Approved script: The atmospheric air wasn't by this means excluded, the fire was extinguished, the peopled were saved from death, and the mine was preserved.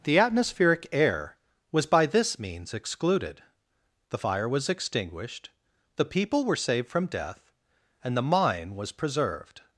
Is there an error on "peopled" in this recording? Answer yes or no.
yes